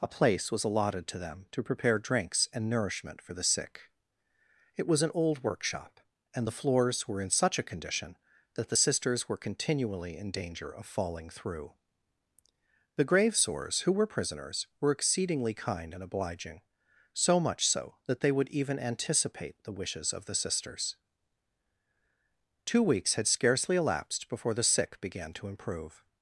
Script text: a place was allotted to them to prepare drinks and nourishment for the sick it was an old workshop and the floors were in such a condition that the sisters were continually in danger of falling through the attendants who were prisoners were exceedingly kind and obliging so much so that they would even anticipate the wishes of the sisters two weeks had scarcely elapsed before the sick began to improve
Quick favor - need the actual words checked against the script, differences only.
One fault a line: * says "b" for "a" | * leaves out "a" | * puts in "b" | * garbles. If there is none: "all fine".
* says "gravesores" for "attendants"